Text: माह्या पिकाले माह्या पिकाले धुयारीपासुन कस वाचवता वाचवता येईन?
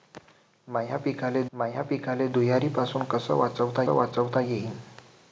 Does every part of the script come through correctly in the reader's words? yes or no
yes